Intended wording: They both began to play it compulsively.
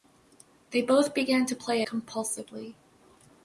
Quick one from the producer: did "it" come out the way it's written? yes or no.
no